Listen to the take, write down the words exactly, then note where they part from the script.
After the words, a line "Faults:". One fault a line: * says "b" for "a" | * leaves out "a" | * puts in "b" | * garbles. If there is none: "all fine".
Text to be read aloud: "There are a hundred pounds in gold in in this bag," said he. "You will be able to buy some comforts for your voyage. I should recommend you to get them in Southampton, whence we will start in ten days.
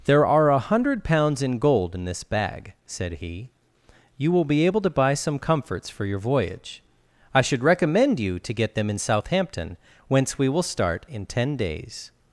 "There are a hundred pounds in gold in this bag," said he. "You will be able to buy some comforts for your voyage. I should recommend you to get them in Southampton, whence we will start in ten days.
Faults:
* leaves out "in"